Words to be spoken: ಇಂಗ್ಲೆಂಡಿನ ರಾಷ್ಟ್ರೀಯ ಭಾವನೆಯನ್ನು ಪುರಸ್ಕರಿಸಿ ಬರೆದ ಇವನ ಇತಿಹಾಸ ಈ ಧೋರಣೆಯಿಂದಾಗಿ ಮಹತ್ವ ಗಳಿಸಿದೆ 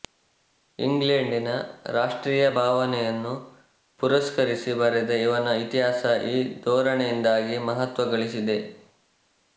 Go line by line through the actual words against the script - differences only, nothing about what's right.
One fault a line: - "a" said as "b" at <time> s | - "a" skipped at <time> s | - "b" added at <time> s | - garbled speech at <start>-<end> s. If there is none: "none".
none